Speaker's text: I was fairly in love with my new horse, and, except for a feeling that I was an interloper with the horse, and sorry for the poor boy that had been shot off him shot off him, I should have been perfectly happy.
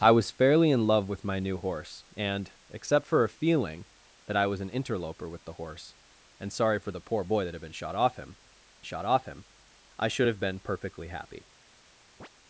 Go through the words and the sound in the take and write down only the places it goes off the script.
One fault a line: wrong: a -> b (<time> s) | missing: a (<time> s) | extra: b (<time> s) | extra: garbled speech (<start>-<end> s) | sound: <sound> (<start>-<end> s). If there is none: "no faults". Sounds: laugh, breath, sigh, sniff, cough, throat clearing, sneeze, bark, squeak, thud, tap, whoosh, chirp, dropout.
sound: chirp (12.2-12.3 s)